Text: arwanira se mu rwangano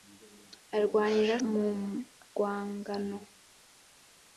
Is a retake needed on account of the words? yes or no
yes